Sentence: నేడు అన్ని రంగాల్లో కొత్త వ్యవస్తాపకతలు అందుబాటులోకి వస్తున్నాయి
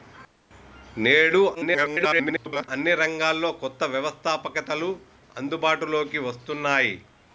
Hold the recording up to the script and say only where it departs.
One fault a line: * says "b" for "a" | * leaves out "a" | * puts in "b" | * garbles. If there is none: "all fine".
* garbles